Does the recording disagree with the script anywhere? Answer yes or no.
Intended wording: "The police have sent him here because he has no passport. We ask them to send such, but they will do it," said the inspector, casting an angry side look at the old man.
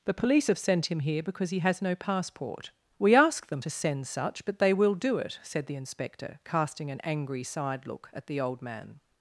no